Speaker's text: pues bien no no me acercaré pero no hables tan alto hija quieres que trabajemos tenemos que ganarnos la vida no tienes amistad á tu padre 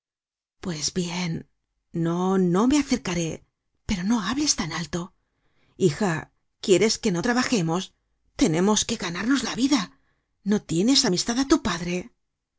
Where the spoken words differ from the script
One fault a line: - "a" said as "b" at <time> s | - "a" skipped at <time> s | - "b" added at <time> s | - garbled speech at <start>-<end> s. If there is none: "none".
- "no" added at 7.1 s